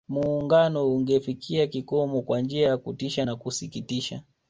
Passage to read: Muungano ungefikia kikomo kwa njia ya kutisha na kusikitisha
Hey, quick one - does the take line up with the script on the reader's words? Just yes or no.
yes